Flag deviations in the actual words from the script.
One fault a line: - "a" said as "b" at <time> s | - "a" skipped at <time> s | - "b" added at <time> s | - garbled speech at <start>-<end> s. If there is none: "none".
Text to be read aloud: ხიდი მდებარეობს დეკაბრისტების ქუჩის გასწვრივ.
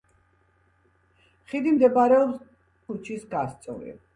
- "დეკაბრისტების" skipped at 2.4 s